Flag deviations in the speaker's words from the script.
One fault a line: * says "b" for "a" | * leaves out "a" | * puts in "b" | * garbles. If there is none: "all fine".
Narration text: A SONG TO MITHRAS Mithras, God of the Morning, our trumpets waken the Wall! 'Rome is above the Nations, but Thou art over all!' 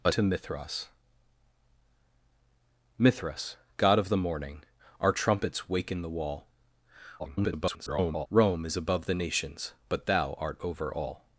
* leaves out "SONG"
* garbles